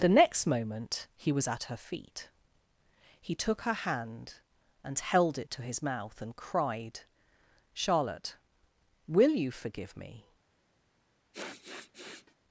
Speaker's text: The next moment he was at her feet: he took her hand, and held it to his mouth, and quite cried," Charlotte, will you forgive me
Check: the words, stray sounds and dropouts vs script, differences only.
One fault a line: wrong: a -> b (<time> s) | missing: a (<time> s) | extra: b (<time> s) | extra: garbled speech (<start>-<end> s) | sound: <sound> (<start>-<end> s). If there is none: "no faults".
missing: quite (6.3 s)
sound: sniff (11.3-12.3 s)